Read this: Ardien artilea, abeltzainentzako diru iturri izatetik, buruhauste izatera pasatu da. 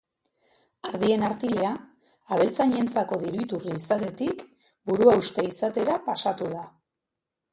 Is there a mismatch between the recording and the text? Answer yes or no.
no